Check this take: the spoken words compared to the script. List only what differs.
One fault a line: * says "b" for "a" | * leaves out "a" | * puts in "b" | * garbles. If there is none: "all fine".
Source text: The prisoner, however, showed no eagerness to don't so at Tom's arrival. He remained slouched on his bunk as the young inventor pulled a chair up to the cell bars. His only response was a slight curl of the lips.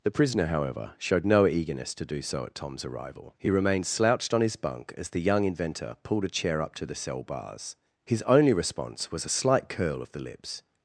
* says "do" for "don't"